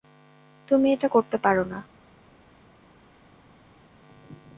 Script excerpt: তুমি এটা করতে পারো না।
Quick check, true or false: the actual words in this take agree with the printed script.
true